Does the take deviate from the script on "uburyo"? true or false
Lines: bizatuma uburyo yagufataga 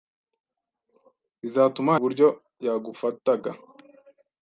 false